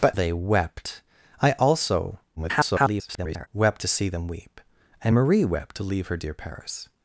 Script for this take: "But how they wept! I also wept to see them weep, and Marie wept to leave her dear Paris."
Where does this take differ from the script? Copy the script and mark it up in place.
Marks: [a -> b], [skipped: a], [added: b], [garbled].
"But [skipped: how] they wept! I also [garbled] wept to see them weep, and Marie wept to leave her dear Paris."